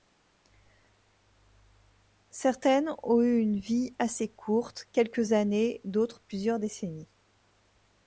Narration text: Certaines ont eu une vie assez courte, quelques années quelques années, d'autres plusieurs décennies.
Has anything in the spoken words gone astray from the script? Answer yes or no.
yes